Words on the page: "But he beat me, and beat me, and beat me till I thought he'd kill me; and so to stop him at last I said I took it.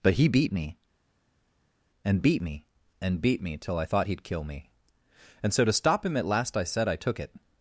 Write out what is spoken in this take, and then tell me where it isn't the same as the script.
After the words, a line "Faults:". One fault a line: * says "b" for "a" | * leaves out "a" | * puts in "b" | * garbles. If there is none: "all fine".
"But he beat me, and beat me, and beat me till I thought he'd kill me; and so to stop him at last I said I took it.
Faults:
all fine